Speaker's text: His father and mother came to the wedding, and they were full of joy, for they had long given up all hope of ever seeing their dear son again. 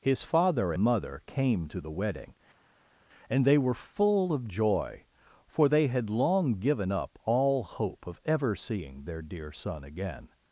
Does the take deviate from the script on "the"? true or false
false